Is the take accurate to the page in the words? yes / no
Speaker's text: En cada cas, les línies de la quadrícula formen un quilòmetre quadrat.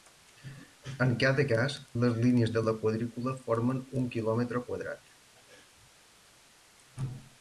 yes